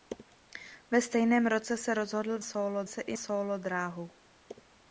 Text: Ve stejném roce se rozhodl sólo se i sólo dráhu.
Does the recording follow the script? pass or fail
pass